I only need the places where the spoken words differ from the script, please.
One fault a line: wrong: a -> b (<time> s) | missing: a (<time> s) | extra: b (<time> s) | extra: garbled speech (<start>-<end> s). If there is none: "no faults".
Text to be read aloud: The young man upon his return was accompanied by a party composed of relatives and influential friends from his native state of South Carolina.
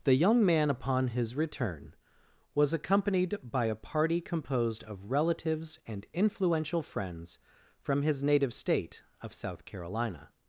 no faults